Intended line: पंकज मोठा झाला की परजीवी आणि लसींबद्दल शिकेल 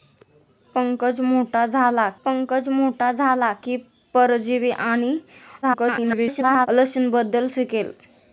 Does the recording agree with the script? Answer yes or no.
no